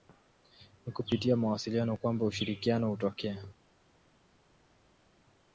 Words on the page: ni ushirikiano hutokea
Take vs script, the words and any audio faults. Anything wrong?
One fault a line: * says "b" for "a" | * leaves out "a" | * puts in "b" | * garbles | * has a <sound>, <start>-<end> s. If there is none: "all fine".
* puts in "kupitia mawasiliano kwamba"